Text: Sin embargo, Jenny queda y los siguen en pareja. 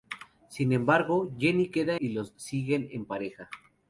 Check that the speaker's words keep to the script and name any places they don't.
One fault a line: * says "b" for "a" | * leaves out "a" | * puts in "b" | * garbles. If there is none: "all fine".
all fine